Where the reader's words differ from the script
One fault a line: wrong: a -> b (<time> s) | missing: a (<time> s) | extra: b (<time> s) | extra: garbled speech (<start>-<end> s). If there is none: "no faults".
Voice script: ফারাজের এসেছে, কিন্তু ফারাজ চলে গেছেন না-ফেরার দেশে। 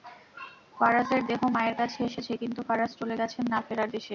extra: দেহ মায়ের কাছে (1.3 s)